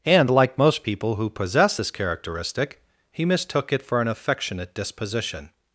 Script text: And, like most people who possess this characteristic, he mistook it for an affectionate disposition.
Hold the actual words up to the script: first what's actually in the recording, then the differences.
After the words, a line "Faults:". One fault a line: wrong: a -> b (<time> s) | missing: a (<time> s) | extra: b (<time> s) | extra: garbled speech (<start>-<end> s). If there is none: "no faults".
And, like most people who possess this characteristic, he mistook it for an affectionate disposition.
Faults:
no faults